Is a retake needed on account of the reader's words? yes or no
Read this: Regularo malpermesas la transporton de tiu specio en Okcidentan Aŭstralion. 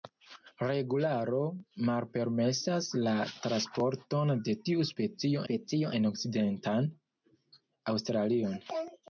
yes